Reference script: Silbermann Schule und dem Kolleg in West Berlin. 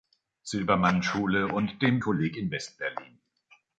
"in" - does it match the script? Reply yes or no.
yes